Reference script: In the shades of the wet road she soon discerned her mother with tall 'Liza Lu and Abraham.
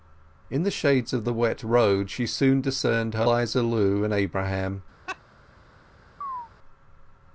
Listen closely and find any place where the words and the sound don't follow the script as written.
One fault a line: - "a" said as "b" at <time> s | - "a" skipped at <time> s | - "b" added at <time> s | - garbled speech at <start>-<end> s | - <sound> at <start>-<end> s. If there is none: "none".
- "mother with tall" skipped at 3.3 s
- laugh at 5.1-5.2 s
- chirp at 6.2-6.5 s